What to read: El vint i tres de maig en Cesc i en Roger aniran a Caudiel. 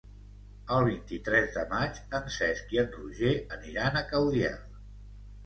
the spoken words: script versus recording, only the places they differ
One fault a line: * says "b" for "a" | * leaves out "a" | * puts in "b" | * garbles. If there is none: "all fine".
all fine